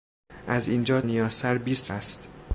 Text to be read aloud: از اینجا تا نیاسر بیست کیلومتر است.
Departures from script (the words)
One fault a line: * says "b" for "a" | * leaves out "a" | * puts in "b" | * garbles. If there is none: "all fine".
* leaves out "تا"
* leaves out "کیلومتر"